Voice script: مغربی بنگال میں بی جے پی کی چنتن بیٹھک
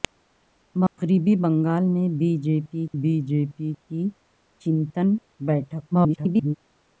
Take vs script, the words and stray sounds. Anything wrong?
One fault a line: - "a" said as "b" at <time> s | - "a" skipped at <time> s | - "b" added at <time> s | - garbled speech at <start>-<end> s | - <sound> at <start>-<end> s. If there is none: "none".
- dropout at 0.9-1.0 s
- "بی جے پی" added at 3.0 s
- garbled speech at 5.9-6.6 s